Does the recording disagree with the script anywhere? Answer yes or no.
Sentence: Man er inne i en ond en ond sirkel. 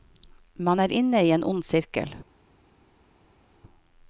yes